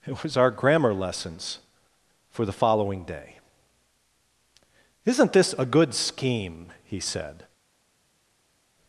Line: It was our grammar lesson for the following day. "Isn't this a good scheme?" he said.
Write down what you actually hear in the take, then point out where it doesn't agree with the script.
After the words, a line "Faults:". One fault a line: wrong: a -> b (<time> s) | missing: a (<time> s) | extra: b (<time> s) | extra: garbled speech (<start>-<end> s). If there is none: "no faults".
It was our grammar lessons for the following day. "Isn't this a good scheme?" he said.
Faults:
wrong: lesson -> lessons (0.9 s)